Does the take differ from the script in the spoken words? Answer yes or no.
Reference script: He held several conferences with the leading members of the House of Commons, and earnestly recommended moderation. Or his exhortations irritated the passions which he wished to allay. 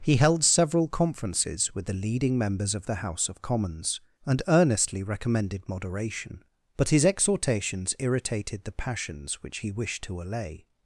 yes